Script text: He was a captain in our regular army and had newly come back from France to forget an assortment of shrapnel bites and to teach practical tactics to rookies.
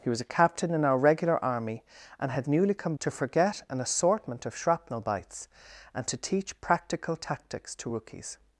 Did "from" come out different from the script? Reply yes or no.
yes